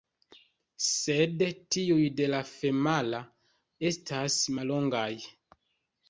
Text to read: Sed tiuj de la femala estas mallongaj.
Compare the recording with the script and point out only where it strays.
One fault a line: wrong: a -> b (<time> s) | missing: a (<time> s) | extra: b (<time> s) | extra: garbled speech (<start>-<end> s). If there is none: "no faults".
no faults